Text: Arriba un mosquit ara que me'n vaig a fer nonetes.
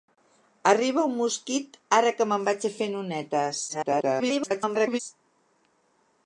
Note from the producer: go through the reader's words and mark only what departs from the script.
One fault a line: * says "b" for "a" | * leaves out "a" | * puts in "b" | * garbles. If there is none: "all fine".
* garbles